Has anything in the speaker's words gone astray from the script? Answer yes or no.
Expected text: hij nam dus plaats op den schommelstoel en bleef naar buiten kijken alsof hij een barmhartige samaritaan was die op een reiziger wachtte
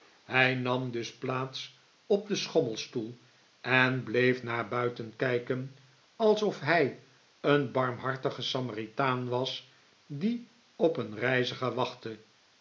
no